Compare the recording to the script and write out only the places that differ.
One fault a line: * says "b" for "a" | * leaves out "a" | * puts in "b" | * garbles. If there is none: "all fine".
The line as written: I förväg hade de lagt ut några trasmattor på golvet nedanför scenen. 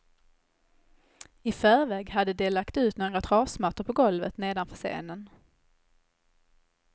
all fine